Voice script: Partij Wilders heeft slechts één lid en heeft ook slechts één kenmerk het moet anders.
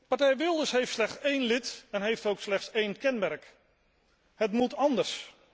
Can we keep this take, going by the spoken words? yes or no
yes